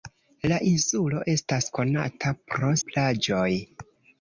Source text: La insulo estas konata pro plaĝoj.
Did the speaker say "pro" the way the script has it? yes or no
yes